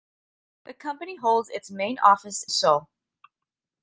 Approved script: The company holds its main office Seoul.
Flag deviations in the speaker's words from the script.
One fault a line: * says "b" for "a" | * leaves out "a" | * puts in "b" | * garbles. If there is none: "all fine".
all fine